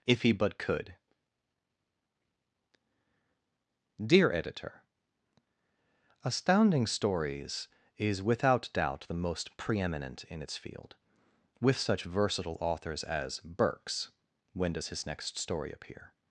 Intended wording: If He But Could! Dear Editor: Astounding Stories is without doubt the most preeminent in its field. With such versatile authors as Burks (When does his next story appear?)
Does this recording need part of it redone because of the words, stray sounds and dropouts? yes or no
no